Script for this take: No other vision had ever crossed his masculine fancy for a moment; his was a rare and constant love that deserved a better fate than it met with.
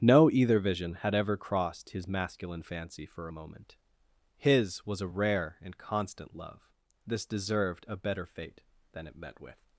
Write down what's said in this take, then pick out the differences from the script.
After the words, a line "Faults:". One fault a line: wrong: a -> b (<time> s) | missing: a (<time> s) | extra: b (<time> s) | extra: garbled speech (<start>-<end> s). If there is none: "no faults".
No either vision had ever crossed his masculine fancy for a moment; his was a rare and constant love this deserved a better fate than it met with.
Faults:
wrong: other -> either (0.3 s)
wrong: that -> this (7.1 s)